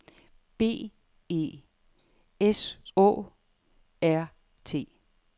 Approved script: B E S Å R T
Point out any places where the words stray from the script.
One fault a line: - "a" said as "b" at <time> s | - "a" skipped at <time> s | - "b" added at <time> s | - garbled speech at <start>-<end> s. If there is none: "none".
none